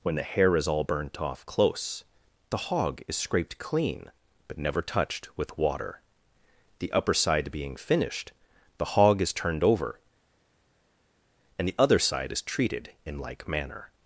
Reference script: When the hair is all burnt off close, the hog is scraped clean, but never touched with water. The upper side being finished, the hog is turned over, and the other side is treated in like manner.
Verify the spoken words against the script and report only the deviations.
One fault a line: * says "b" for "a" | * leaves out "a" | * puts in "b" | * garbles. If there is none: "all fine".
all fine